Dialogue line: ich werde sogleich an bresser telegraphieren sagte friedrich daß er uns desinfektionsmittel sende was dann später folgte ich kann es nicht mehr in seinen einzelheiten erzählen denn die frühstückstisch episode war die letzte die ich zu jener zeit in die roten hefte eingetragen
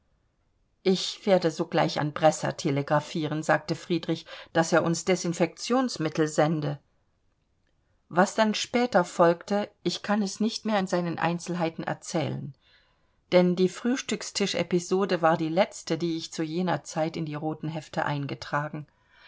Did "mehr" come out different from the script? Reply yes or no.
no